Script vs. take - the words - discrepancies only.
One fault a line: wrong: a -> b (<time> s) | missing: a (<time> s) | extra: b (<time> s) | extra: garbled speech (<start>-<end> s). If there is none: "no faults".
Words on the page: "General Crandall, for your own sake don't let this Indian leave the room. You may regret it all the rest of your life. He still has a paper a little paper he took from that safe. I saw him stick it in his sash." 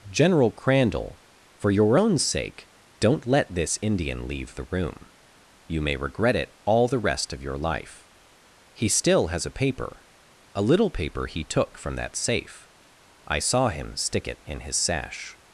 no faults